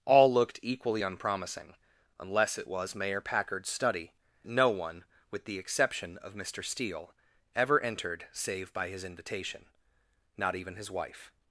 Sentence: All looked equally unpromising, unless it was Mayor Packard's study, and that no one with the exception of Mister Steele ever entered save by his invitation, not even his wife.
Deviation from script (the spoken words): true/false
true